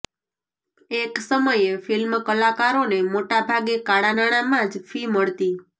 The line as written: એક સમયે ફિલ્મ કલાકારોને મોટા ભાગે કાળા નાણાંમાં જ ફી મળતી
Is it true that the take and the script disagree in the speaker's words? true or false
false